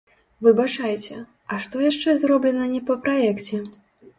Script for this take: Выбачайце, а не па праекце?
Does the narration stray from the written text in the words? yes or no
yes